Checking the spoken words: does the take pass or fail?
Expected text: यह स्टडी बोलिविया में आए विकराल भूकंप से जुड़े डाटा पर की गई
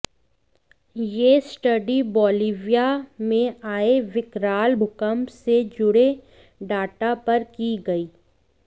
pass